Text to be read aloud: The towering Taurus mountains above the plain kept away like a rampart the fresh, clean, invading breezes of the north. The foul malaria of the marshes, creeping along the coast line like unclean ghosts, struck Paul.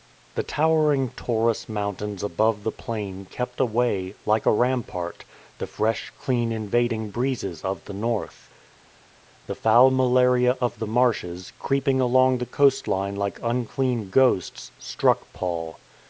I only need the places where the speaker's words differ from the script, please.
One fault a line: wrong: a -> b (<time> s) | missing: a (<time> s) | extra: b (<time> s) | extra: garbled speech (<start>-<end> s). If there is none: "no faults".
no faults